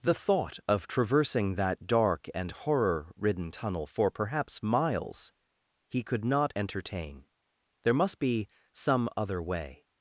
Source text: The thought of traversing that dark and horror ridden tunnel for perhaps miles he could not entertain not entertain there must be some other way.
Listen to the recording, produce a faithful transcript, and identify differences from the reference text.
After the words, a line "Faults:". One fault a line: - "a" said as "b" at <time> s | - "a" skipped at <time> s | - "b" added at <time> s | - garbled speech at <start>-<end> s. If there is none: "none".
The thought of traversing that dark and horror ridden tunnel for perhaps miles he could not entertain there must be some other way.
Faults:
- "not entertain" skipped at 7.2 s